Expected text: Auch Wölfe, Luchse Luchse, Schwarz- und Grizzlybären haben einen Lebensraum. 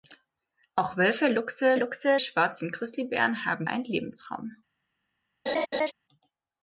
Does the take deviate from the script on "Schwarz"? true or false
false